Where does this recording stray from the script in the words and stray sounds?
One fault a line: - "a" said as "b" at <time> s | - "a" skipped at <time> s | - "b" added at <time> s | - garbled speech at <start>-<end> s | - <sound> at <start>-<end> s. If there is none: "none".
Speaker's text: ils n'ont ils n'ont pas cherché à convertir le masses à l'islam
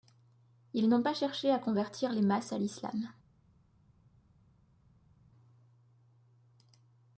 - "ils n'ont" skipped at 1.0 s
- "le" said as "les" at 2.1 s